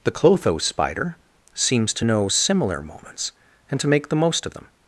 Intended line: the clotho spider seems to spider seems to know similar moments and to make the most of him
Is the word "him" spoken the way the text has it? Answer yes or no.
no